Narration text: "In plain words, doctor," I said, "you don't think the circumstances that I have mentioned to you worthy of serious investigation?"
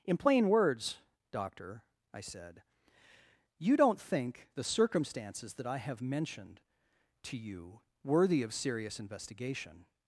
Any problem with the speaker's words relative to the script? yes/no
no